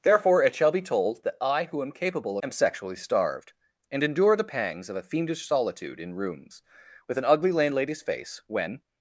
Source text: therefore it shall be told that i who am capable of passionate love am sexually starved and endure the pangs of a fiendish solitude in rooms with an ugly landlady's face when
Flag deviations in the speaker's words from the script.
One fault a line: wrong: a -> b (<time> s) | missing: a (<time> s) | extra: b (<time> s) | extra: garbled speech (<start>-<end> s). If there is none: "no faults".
missing: of passionate love (2.4 s)